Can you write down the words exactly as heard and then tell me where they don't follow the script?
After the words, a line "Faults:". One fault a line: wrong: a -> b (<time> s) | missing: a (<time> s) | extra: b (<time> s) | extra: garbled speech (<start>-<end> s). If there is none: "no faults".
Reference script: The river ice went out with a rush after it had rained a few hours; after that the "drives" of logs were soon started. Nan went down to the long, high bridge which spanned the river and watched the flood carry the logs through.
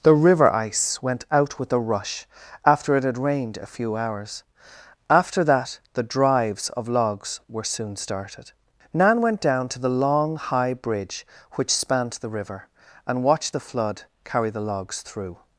The river ice went out with a rush after it had rained a few hours; after that the "drives" of logs were soon started. Nan went down to the long, high bridge which spanned the river and watched the flood carry the logs through.
Faults:
no faults